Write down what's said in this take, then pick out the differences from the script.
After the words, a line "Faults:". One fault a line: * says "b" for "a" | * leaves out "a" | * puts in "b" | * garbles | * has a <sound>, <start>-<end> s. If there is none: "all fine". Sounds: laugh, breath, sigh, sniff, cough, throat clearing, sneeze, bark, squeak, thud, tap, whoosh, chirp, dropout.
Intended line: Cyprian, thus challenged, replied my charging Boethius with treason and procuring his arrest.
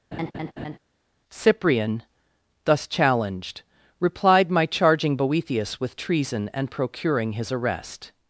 Cyprian, thus challenged, replied my charging Boethius with treason and procuring his arrest.
Faults:
* has a laugh, 0.1-0.8 s